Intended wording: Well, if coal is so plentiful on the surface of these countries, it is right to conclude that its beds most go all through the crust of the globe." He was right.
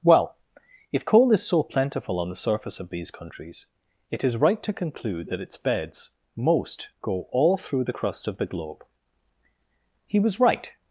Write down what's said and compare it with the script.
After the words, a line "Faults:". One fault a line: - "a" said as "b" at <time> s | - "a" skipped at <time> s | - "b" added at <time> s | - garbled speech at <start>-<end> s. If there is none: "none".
Well, if coal is so plentiful on the surface of these countries, it is right to conclude that its beds most go all through the crust of the globe." He was right.
Faults:
none